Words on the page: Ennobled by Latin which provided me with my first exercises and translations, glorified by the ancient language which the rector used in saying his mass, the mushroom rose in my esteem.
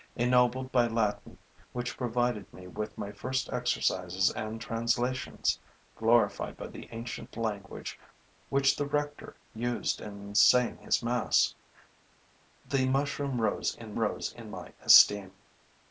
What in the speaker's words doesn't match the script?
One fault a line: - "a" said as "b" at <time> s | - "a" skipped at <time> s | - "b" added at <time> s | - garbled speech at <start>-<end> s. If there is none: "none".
- "rose in" added at 14.0 s